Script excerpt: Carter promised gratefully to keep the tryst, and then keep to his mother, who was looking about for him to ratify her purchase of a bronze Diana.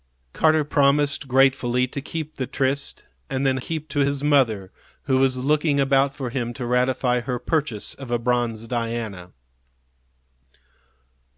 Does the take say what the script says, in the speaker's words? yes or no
yes